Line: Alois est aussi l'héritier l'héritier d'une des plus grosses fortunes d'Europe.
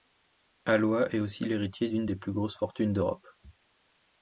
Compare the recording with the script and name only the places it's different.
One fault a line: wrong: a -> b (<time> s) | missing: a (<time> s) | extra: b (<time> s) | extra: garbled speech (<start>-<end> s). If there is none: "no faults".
missing: l'héritier (1.9 s)